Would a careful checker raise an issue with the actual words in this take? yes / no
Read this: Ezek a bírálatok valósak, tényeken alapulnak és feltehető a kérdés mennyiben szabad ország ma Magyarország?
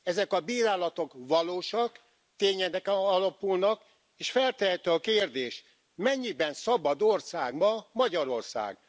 no